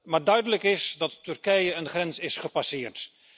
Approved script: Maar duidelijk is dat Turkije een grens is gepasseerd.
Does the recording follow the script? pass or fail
pass